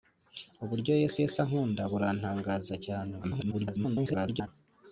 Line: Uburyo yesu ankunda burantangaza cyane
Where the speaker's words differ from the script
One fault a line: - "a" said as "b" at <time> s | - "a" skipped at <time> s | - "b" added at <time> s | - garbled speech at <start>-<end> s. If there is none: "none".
- "yesu" added at 1.2 s
- garbled speech at 3.2-4.5 s